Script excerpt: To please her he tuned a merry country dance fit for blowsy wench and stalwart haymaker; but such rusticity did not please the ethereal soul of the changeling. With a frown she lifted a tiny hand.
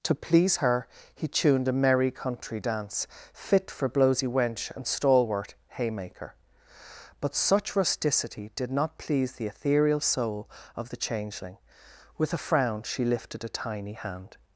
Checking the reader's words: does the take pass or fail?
pass